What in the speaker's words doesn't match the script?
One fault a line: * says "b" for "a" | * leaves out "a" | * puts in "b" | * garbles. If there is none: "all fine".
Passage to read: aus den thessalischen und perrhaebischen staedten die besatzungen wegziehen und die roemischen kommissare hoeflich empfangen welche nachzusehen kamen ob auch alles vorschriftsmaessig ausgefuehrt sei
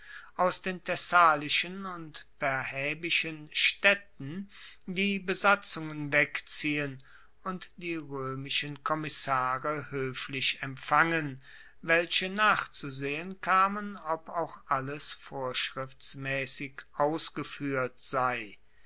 all fine